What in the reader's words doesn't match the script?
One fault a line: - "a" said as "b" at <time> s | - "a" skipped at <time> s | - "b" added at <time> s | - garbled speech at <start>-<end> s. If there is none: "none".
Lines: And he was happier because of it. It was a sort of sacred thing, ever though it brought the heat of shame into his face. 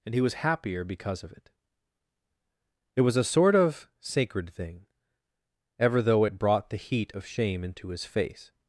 none